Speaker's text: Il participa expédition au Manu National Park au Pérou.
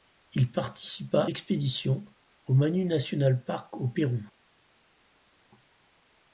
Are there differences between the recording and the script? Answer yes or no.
no